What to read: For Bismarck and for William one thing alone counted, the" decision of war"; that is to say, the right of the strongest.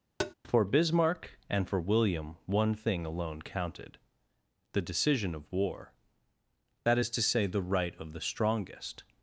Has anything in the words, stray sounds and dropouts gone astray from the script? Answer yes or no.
yes